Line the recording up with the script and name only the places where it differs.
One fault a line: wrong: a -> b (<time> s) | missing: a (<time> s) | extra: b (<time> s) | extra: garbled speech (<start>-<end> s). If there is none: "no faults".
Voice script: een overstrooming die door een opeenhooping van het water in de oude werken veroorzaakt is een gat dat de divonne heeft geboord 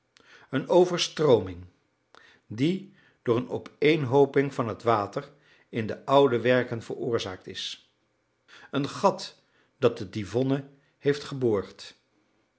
no faults